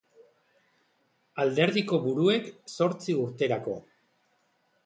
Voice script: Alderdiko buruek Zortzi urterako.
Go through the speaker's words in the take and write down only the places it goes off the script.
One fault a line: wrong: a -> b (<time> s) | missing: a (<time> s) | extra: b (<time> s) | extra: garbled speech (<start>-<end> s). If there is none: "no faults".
no faults